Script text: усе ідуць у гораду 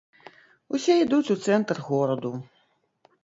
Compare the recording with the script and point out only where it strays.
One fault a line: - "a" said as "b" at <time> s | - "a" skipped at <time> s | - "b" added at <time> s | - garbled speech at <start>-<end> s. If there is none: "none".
- "цэнтр" added at 1.4 s